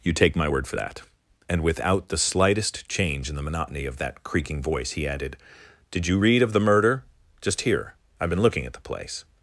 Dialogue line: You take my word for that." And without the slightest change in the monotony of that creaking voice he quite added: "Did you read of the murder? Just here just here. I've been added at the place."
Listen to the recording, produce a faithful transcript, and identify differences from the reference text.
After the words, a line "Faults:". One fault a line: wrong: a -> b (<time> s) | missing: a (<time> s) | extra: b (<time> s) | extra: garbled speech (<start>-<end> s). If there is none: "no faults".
You take my word for that." And without the slightest change in the monotony of that creaking voice he added: "Did you read of the murder? Just here. I've been looking at the place."
Faults:
missing: quite (5.1 s)
missing: just here (8.0 s)
wrong: added -> looking (8.4 s)